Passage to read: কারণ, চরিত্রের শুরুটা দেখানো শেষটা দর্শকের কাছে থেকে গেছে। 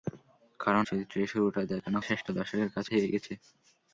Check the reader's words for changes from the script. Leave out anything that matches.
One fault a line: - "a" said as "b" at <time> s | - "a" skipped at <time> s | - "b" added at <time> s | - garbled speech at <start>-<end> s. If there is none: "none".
none